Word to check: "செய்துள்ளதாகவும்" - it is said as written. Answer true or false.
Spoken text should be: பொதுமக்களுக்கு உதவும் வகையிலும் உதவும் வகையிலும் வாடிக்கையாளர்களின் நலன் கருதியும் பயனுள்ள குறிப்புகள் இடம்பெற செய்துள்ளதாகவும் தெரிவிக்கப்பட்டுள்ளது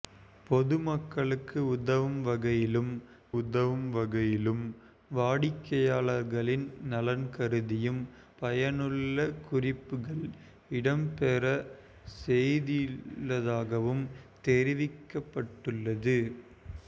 true